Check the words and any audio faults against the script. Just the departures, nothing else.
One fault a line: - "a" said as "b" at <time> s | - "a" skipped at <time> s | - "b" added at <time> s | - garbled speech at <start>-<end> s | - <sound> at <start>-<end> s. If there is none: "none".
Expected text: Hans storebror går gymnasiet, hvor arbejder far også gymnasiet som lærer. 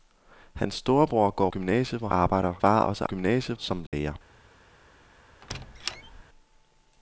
- dropout at 3.9-3.9 s
- squeak at 5.4-6.2 s